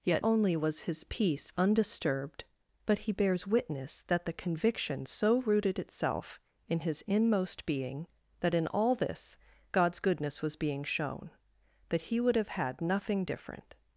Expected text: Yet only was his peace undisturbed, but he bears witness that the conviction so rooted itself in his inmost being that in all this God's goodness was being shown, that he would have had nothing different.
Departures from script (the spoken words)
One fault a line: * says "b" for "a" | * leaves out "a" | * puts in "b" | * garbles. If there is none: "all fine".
all fine